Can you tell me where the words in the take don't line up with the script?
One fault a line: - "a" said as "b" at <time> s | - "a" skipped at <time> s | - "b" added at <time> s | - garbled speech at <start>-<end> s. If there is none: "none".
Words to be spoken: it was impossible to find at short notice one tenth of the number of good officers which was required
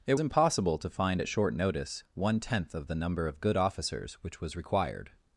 - "was" skipped at 0.1 s